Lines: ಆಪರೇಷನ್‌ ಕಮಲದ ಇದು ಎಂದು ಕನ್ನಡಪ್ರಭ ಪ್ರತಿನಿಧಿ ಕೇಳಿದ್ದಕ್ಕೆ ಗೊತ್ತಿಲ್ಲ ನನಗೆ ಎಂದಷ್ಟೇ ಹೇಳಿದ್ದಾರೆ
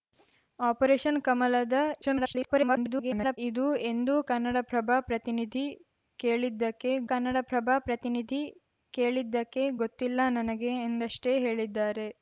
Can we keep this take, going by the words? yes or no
no